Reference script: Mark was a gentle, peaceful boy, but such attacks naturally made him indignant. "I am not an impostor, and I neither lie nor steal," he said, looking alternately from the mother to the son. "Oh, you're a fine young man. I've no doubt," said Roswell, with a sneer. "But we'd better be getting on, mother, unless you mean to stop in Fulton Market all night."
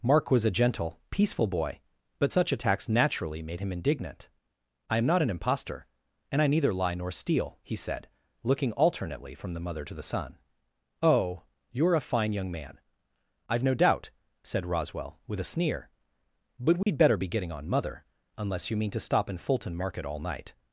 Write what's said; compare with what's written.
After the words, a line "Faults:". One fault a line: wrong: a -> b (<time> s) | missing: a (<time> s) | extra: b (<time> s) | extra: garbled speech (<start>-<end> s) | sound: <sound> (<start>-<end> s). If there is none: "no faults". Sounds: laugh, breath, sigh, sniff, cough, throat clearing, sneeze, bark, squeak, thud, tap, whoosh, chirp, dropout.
Mark was a gentle, peaceful boy, but such attacks naturally made him indignant. "I am not an impostor, and I neither lie nor steal," he said, looking alternately from the mother to the son. "Oh, you're a fine young man. I've no doubt," said Roswell, with a sneer. "But we'd better be getting on, mother, unless you mean to stop in Fulton Market all night."
Faults:
sound: dropout (16.8-16.9 s)